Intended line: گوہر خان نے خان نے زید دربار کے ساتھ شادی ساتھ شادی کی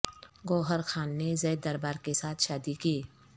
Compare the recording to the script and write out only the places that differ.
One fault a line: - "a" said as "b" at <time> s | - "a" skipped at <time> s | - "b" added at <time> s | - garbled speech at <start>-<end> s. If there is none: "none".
- "خان نے" skipped at 1.3 s
- "ساتھ شادی" skipped at 2.7 s